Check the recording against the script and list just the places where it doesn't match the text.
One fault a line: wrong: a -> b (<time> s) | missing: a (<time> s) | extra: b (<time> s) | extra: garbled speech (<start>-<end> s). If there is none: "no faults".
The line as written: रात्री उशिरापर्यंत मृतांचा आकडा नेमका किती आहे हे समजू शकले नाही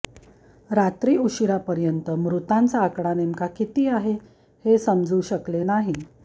no faults